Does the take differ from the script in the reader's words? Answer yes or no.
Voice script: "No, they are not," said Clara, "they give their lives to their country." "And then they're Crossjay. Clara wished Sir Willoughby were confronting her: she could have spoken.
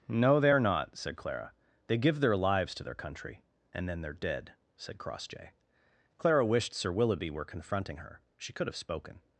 yes